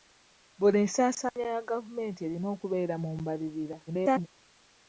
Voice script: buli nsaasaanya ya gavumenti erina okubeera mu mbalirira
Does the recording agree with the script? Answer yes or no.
no